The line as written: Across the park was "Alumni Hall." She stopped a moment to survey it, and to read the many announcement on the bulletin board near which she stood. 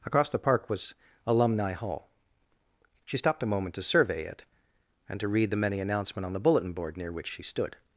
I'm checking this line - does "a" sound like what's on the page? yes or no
yes